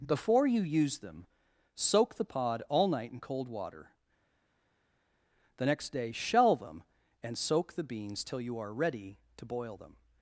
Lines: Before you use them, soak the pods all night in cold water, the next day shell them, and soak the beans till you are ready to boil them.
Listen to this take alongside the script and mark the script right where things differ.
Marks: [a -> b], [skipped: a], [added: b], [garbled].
Before you use them, soak the [pods -> pod] all night in cold water, the next day shell them, and soak the beans till you are ready to boil them.